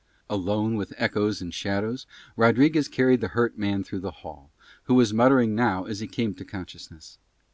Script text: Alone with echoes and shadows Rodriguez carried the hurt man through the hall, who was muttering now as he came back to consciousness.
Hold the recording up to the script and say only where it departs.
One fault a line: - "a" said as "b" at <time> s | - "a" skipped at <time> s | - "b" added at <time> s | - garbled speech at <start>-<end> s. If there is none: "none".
- "back" skipped at 6.3 s